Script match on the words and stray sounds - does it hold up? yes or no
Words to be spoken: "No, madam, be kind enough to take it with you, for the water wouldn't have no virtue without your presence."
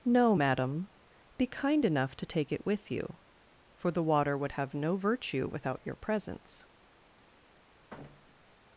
no